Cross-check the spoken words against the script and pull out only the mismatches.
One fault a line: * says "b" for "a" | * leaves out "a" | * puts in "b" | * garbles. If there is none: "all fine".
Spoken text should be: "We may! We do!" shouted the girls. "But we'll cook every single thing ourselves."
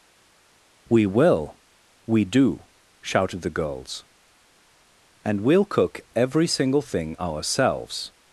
* says "will" for "may"
* says "And" for "But"